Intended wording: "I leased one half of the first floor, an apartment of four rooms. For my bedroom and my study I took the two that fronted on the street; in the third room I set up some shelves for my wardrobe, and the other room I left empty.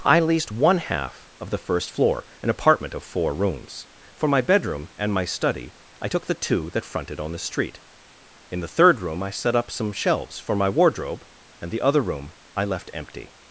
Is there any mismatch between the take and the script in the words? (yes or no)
no